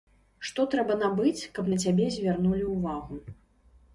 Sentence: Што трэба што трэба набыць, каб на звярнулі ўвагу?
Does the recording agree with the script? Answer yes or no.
no